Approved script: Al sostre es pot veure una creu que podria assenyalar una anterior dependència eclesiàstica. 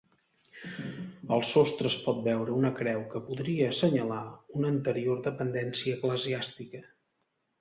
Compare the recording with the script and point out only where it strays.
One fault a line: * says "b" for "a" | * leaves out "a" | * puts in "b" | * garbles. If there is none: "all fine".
all fine